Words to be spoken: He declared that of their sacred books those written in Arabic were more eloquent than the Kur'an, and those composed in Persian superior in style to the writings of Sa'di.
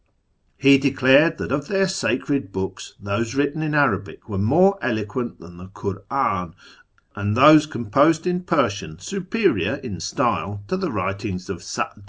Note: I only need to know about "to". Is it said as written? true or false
true